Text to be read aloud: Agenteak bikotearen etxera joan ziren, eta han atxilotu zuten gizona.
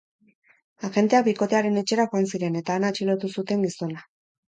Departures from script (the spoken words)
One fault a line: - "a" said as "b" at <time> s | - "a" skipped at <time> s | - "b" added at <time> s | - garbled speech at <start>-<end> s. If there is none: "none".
none